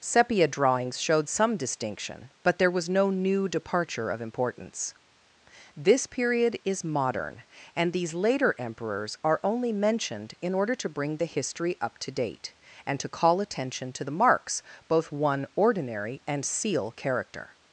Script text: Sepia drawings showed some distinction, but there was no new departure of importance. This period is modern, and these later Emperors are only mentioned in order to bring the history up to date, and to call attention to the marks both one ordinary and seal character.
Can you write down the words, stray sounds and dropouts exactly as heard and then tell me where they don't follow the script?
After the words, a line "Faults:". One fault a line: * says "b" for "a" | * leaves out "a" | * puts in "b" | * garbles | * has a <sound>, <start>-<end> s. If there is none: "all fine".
Sepia drawings showed some distinction, but there was no new departure of importance. This period is modern, and these later Emperors are only mentioned in order to bring the history up to date, and to call attention to the marks both one ordinary and seal character.
Faults:
all fine